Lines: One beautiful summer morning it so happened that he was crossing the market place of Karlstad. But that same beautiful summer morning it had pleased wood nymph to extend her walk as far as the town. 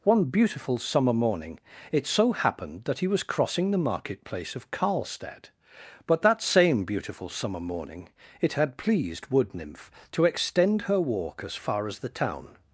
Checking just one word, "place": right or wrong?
right